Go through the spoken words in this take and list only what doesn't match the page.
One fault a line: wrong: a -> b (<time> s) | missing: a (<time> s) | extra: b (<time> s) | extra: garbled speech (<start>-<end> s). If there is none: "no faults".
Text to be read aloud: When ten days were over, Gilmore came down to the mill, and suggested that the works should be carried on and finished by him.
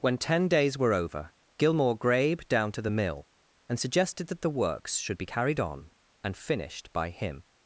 wrong: came -> grabe (1.9 s)